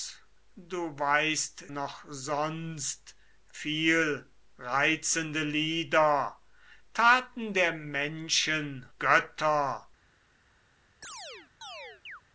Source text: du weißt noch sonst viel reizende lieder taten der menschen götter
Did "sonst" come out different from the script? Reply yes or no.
no